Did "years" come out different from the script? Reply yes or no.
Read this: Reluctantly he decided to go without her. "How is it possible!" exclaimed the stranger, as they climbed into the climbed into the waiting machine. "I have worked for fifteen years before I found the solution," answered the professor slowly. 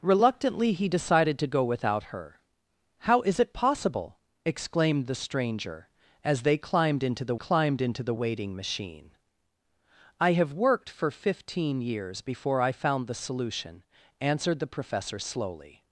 no